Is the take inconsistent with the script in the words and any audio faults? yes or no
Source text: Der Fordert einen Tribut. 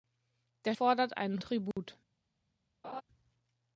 yes